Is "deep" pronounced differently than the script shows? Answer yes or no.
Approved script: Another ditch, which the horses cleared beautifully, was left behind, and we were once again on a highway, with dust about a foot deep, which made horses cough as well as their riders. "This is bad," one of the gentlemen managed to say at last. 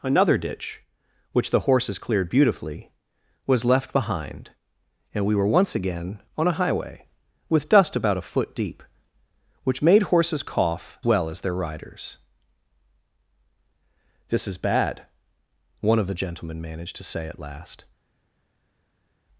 no